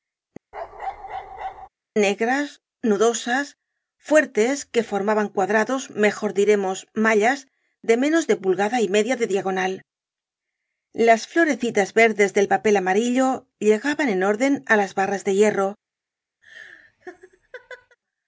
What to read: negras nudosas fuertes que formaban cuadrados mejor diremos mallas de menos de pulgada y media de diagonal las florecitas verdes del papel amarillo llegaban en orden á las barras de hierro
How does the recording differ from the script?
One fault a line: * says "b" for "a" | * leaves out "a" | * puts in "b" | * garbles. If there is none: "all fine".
all fine